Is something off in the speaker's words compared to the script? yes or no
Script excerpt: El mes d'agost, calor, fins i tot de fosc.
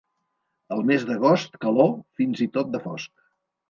no